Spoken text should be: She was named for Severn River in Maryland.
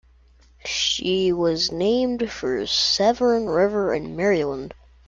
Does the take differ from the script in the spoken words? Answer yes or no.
no